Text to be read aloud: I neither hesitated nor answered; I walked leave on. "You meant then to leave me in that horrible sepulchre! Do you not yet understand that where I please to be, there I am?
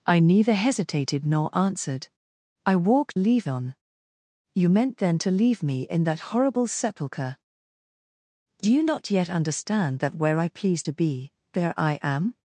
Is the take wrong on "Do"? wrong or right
right